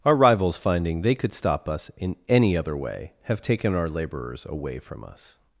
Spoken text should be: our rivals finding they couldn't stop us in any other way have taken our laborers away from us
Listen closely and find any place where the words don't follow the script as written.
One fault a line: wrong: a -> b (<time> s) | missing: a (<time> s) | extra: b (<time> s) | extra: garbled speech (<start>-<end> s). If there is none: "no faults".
wrong: couldn't -> could (1.1 s)